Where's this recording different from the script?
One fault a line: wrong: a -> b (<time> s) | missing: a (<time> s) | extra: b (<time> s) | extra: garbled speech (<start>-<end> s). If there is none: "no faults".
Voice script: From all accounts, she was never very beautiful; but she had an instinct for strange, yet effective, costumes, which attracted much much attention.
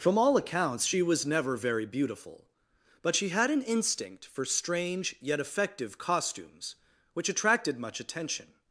missing: much (8.0 s)